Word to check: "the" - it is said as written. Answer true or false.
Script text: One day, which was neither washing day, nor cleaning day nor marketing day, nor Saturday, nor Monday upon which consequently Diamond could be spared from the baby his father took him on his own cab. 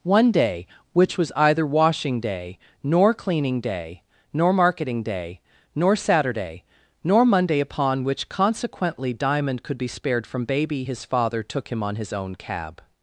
false